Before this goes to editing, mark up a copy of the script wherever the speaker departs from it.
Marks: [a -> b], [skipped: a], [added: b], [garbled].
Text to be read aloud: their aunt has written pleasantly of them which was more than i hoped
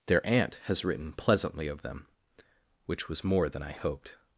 their aunt has written pleasantly of them which was more than i hoped